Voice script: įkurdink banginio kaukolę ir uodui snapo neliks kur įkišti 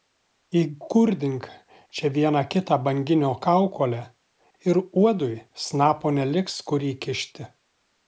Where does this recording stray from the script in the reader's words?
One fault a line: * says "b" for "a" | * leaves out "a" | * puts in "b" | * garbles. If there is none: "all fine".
* puts in "čia vieną kitą"